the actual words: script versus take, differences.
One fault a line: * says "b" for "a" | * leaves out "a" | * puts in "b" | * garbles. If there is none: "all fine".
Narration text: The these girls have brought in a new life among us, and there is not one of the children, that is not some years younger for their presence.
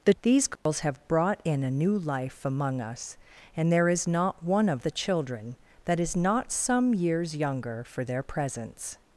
all fine